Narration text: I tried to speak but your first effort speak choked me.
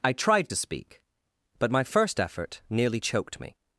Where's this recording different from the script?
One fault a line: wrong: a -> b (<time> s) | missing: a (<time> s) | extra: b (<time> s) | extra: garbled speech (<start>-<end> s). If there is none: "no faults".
wrong: your -> my (1.7 s)
wrong: speak -> nearly (2.7 s)